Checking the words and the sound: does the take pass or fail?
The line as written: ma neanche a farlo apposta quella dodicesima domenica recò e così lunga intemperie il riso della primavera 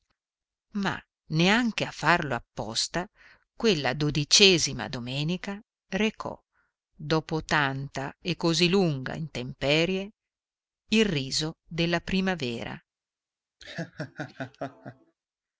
fail